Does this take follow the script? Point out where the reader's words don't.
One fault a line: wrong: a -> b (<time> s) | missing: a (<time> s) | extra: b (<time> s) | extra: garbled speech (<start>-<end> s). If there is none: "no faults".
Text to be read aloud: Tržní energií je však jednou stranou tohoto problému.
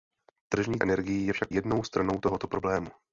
no faults